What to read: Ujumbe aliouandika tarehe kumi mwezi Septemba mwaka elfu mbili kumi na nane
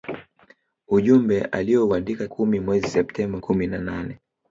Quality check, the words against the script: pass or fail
fail